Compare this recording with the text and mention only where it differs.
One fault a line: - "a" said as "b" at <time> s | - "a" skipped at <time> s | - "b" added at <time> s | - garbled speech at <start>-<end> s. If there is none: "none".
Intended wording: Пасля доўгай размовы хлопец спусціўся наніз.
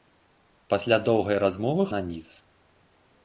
- "хлопец спусціўся" skipped at 1.9 s